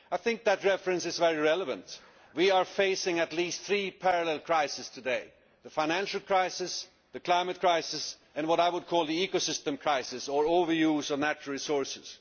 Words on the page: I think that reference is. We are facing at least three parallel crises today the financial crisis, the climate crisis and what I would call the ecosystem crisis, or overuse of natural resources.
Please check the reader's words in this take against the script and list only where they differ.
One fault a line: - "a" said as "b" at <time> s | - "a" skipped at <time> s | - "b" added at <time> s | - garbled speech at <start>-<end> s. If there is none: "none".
- "very relevant" added at 1.2 s